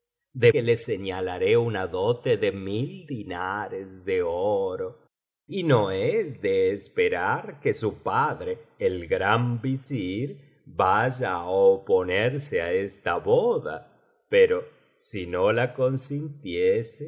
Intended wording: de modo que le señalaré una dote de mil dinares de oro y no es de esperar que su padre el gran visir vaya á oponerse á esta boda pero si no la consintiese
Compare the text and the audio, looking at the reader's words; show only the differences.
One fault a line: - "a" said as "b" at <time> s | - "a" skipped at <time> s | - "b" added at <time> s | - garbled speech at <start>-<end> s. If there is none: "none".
- "modo" skipped at 0.5 s